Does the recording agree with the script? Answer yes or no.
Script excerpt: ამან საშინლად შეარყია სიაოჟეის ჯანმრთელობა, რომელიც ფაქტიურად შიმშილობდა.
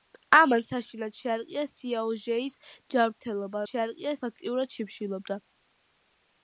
no